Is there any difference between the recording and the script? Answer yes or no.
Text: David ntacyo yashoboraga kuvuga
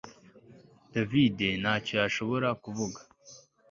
no